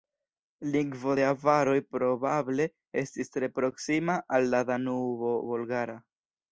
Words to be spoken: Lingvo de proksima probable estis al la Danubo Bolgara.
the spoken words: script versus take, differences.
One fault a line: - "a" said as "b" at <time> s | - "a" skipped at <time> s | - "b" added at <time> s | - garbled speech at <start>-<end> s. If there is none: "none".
- "proksima" said as "avaroj" at 1.3 s
- "tre proksima" added at 3.4 s